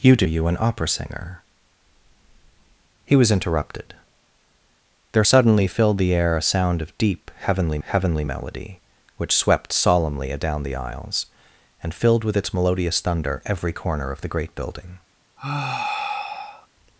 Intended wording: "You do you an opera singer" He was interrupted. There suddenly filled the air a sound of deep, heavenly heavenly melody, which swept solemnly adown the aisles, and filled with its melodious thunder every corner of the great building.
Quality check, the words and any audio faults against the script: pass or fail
fail